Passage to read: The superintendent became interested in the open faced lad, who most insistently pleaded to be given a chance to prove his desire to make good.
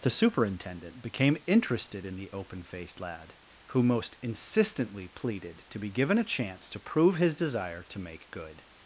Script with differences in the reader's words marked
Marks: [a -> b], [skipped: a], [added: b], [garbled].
The superintendent became interested in the open faced lad, who most insistently pleaded to be given a chance to prove his desire to make good.